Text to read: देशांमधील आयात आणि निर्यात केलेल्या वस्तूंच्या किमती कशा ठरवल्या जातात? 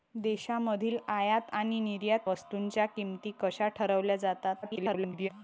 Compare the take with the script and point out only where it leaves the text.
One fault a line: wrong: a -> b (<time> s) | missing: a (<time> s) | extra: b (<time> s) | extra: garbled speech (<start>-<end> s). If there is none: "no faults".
missing: केलेल्या (2.2 s)
extra: garbled speech (4.6-5.3 s)